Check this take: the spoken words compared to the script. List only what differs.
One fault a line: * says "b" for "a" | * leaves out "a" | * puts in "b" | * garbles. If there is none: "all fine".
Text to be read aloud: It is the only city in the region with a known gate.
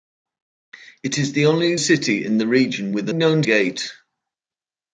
all fine